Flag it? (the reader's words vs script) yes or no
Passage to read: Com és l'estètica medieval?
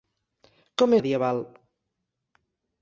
yes